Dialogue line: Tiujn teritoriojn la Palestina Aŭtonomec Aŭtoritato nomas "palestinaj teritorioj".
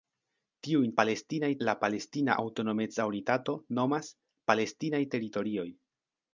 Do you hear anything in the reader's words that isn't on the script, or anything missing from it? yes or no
yes